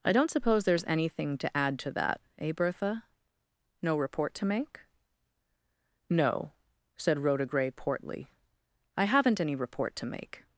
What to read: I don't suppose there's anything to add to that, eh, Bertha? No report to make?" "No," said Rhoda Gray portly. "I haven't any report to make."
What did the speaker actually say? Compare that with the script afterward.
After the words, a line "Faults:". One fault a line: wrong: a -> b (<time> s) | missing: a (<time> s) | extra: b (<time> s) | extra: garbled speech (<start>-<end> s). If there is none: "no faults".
I don't suppose there's anything to add to that, eh, Bertha? No report to make?" "No," said Rhoda Gray portly. "I haven't any report to make."
Faults:
no faults